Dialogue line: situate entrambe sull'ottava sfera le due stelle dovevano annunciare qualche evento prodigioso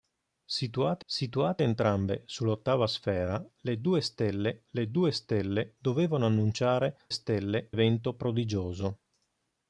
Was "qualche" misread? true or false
true